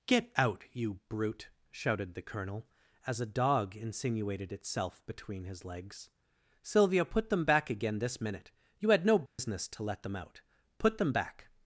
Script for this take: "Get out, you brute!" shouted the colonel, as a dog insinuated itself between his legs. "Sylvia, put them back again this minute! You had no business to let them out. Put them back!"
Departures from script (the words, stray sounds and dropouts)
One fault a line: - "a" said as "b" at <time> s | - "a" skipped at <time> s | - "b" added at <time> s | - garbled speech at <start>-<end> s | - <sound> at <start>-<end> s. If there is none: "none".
- dropout at 9.3-9.4 s